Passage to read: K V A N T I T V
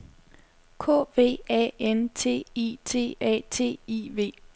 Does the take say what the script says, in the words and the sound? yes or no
no